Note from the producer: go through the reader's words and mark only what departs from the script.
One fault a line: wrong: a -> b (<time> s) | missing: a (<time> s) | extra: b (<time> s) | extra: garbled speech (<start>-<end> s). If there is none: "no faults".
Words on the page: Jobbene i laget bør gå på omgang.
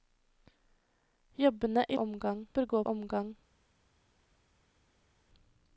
wrong: laget -> omgang (1.9 s)
missing: på (2.8 s)